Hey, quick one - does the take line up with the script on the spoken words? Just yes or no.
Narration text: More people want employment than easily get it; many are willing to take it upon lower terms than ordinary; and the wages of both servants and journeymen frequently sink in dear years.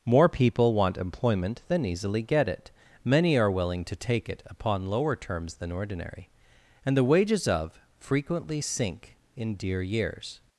no